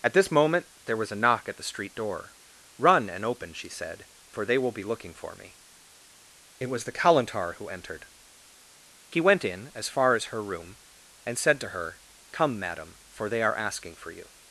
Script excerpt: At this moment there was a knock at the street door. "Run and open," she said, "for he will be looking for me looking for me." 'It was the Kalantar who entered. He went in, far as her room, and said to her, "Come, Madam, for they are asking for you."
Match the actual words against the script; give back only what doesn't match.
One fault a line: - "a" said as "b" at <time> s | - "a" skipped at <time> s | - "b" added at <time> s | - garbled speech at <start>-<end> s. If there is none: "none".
- "he" said as "they" at 4.5 s
- "looking for me" skipped at 5.6 s
- "as" added at 9.8 s